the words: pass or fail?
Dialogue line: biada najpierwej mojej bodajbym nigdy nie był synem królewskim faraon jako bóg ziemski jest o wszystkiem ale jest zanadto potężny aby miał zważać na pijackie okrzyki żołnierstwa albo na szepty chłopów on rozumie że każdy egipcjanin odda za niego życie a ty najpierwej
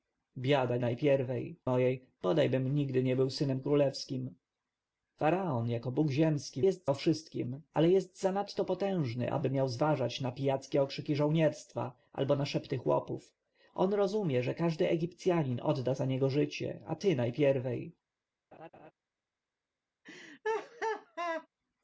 pass